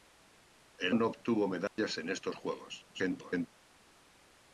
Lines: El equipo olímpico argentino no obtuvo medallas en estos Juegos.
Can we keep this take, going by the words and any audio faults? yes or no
no